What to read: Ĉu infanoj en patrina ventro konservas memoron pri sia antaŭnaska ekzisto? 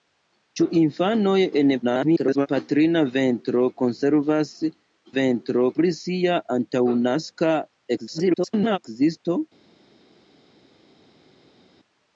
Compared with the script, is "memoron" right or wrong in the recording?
wrong